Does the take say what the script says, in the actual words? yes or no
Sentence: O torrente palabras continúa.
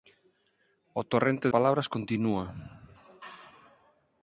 yes